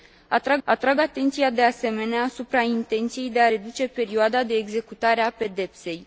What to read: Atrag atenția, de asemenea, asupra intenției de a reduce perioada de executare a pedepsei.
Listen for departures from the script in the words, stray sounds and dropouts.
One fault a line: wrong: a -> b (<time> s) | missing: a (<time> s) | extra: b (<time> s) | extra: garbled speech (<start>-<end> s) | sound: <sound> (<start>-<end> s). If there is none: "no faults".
extra: atrag (0.6 s)